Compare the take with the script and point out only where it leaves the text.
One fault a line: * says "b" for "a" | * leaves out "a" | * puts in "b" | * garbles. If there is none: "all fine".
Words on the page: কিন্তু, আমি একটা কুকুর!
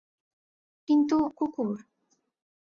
* leaves out "আমি একটা"